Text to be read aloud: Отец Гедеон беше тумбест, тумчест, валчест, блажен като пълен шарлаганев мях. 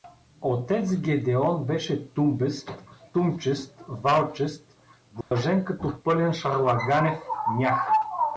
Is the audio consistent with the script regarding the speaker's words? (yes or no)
yes